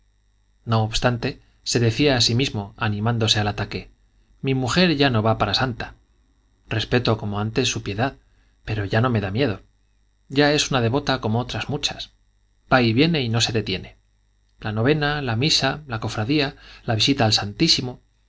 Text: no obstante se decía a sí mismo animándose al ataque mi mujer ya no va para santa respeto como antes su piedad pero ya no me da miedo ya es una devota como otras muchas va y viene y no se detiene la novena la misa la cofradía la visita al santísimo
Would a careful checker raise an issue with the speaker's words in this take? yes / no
no